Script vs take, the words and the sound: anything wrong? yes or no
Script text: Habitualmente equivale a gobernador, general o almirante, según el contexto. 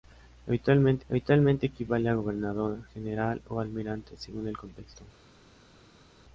yes